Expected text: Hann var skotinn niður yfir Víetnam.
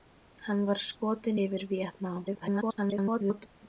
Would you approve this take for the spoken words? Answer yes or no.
no